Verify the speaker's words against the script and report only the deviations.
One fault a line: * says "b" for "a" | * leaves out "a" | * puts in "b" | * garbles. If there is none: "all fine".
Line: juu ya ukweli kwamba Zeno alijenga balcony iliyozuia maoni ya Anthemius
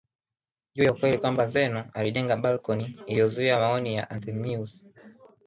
all fine